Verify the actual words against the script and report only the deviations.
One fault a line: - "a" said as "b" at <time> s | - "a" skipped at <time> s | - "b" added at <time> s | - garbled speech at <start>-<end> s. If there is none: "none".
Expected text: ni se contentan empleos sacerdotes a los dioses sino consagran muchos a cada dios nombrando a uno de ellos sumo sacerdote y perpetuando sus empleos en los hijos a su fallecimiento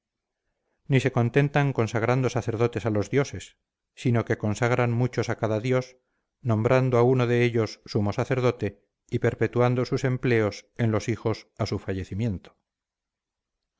- "empleos" said as "consagrando" at 1.7 s
- "que" added at 4.2 s